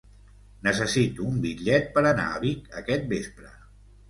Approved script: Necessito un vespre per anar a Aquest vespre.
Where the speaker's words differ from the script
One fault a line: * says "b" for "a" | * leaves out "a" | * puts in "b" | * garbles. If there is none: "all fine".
* says "bitllet" for "vespre"
* puts in "Vic"